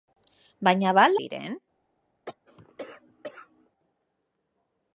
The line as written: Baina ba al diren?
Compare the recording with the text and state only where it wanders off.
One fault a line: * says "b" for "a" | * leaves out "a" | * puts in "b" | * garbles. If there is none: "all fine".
all fine